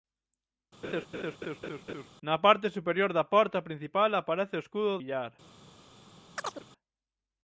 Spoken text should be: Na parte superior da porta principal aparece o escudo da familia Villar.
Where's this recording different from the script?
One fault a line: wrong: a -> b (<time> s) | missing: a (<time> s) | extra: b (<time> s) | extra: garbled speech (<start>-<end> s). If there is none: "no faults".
missing: da familia (4.9 s)